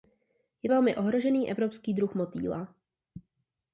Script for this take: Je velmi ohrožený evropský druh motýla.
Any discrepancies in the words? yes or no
no